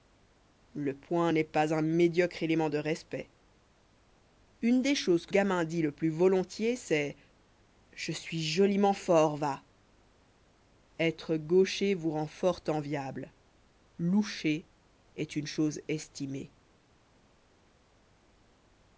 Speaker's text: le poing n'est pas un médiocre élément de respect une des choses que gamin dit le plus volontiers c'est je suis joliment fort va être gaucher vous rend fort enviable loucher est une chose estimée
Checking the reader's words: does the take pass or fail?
pass